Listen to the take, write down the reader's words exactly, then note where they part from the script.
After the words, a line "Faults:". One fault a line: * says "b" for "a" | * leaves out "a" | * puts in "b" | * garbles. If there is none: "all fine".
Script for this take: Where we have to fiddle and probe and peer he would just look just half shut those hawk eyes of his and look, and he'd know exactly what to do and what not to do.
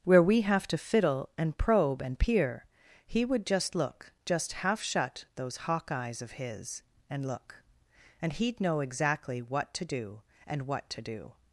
Where we have to fiddle and probe and peer he would just look just half shut those hawk eyes of his and look, and he'd know exactly what to do and what to do.
Faults:
* leaves out "not"